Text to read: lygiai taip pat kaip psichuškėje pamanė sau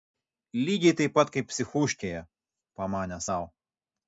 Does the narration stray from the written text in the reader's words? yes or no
no